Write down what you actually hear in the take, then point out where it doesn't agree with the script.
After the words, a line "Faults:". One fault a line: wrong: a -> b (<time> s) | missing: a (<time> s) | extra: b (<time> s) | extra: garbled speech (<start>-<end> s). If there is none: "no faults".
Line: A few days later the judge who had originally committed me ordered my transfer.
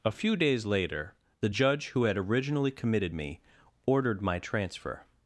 A few days later the judge who had originally committed me ordered my transfer.
Faults:
no faults